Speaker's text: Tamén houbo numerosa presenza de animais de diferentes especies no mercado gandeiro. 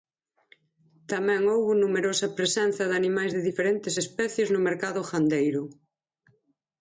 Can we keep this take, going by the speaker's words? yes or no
yes